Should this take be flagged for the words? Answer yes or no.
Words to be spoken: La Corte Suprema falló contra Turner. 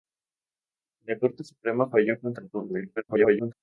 yes